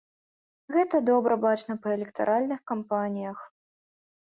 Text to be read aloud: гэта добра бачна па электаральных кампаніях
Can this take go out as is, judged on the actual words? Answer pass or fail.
pass